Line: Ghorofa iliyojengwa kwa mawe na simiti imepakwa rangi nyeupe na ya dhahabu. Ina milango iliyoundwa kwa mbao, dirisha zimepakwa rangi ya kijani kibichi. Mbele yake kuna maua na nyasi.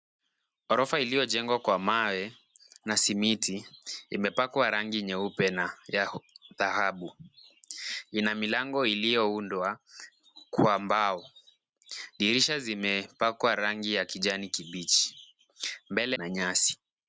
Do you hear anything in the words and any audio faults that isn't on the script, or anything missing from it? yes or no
yes